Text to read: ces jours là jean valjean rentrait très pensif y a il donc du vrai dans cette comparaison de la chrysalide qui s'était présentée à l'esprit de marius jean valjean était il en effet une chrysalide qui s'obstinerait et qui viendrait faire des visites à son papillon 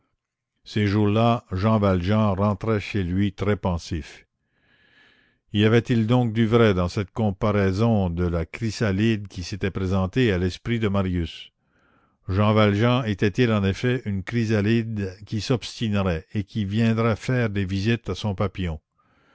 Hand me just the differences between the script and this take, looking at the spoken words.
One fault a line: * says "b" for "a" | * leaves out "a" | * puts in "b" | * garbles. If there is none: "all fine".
* puts in "chez lui"
* says "avait" for "a"